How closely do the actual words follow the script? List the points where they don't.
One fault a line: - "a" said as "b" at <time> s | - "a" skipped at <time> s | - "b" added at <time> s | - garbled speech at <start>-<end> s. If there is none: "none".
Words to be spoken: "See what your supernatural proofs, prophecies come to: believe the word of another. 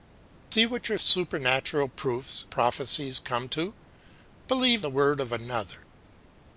none